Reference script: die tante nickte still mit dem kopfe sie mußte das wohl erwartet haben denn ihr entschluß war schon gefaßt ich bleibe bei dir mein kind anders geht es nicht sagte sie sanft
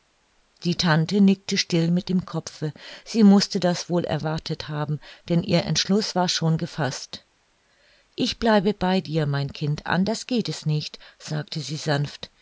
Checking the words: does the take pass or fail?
pass